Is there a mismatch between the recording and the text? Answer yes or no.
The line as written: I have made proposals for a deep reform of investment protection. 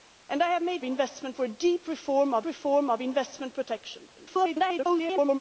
yes